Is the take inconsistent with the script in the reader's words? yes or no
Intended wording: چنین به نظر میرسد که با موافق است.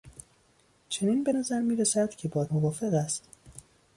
no